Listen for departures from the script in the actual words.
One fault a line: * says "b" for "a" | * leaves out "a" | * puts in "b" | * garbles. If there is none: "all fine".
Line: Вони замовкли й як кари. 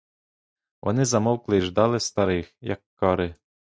* puts in "ждали старих"